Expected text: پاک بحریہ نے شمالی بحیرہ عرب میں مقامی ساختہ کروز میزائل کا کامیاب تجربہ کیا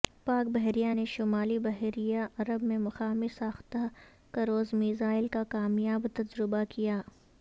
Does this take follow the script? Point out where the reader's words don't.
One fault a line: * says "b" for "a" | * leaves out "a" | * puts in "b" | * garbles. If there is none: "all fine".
all fine